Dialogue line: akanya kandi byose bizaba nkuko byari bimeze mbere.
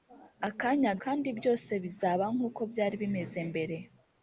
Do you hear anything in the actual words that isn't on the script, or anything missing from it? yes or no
no